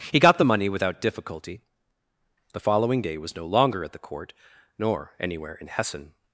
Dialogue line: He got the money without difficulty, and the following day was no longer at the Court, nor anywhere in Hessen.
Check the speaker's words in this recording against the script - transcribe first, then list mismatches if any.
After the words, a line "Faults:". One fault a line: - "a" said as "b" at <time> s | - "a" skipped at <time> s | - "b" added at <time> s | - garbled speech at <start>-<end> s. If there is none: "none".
He got the money without difficulty, the following day was no longer at the Court, nor anywhere in Hessen.
Faults:
- "and" skipped at 1.6 s